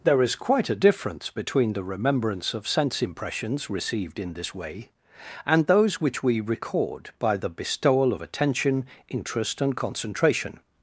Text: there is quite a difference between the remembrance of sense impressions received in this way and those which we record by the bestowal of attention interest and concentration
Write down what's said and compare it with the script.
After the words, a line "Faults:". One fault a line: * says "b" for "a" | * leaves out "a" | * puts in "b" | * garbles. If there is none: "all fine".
there is quite a difference between the remembrance of sense impressions received in this way and those which we record by the bestowal of attention interest and concentration
Faults:
all fine